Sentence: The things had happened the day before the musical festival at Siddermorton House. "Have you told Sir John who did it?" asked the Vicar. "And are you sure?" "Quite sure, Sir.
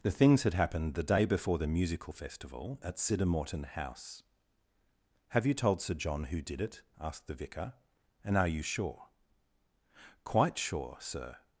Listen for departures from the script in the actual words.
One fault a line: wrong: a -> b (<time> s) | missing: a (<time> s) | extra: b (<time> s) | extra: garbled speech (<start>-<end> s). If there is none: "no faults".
no faults